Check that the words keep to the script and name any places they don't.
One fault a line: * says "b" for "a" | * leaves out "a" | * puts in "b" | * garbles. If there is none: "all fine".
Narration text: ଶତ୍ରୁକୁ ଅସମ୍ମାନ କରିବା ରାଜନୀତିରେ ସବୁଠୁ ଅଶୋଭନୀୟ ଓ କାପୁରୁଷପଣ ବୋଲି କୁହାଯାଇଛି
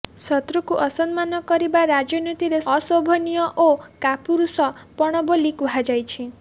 * leaves out "ସବୁଠୁ"